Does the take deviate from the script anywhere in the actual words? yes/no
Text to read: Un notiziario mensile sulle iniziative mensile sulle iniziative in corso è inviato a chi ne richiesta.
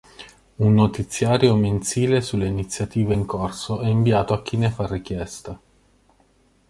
yes